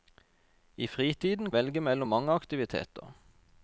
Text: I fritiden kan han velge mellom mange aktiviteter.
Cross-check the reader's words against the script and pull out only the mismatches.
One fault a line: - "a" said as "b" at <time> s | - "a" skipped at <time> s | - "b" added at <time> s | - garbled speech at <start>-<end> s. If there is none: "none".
- "kan han" skipped at 1.5 s